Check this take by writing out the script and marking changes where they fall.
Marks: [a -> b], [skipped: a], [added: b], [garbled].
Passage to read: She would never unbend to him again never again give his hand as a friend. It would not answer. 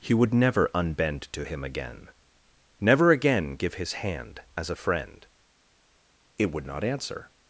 [She -> He] would never unbend to him again never again give his hand as a friend. It would not answer.